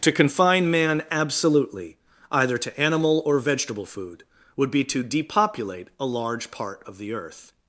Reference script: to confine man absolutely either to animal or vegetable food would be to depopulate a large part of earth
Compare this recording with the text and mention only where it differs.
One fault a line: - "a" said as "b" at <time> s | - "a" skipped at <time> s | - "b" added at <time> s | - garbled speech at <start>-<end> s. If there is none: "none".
- "the" added at 7.0 s